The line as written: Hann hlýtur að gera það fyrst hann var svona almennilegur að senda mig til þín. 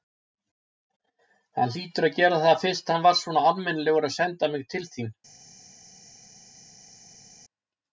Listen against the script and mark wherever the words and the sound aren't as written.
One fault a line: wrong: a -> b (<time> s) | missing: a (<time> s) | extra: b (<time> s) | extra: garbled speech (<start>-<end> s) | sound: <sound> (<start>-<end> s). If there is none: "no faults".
no faults